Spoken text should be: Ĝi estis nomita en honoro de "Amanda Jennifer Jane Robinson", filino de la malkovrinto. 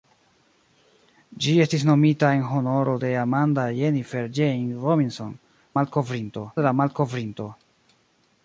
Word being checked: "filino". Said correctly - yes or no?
no